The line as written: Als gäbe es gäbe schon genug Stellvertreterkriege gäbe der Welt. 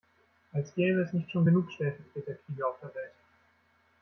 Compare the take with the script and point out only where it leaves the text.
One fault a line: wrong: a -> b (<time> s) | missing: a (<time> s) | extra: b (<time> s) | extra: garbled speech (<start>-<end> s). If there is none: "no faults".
wrong: gäbe -> nicht (1.1 s)
wrong: gäbe -> auf (2.6 s)